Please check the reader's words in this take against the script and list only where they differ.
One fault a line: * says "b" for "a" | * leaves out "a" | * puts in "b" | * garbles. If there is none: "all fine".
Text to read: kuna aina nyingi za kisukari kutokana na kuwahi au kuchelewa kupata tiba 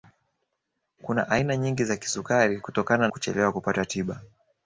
* leaves out "na kuwahi au"